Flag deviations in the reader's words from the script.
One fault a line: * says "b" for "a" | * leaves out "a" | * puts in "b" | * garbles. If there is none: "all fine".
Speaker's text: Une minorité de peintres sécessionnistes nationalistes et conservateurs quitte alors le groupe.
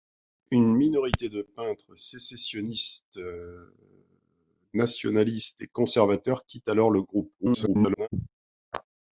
* garbles